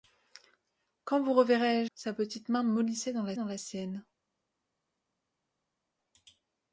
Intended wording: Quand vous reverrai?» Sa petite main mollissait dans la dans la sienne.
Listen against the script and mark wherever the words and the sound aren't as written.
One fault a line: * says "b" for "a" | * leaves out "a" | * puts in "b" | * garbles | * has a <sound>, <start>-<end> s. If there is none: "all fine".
all fine